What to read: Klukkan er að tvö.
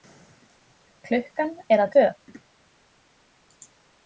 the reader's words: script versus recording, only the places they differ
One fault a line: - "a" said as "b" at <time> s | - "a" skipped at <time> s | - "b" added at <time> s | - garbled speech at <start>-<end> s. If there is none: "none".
none